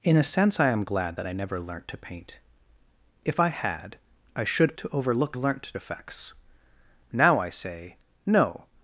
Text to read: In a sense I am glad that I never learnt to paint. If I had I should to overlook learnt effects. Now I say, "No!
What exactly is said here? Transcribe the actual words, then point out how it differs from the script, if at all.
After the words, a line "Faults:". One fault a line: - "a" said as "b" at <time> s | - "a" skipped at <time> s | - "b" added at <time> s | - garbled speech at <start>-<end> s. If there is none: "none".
In a sense I am glad that I never learnt to paint. If I had I should to overlook learnt effects. Now I say, "No!
Faults:
none